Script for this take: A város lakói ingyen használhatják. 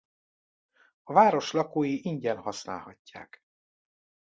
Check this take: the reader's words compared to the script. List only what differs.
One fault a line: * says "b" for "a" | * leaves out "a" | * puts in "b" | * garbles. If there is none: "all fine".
all fine